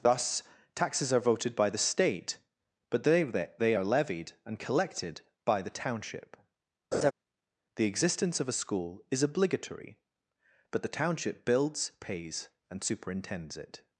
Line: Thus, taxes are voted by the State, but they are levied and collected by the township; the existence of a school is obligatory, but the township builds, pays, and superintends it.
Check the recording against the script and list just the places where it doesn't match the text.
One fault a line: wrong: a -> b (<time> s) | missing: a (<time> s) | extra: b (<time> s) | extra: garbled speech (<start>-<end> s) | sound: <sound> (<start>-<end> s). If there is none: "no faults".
extra: they (3.6 s)
sound: laugh (6.9-7.1 s)